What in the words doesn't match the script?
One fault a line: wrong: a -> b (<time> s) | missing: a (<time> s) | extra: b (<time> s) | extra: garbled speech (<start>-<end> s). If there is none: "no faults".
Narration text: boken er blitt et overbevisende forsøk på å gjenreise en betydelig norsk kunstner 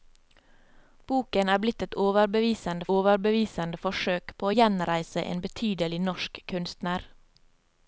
extra: overbevisende (2.9 s)